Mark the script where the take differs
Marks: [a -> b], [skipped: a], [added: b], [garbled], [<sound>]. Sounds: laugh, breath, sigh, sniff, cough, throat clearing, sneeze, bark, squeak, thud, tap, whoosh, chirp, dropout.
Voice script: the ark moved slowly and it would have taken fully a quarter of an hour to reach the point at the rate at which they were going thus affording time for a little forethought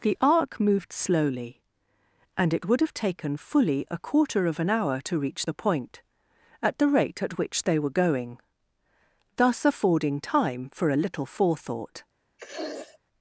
the ark moved slowly and it would have taken fully a quarter of an hour to reach the point at the rate at which they were going thus affording time for a little forethought [sniff]